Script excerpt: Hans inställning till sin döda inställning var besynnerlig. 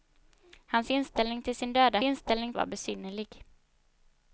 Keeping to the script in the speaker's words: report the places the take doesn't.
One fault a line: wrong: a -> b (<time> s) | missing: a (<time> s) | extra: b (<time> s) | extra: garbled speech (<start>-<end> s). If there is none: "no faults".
no faults